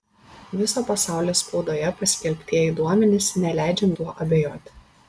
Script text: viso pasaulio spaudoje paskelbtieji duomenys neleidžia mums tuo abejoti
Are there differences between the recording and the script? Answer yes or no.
yes